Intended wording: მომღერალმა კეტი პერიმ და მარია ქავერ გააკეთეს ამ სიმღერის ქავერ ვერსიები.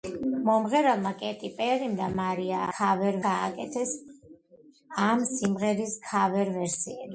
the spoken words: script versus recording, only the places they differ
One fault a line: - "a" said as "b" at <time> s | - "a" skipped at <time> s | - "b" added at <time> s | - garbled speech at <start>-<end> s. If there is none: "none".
none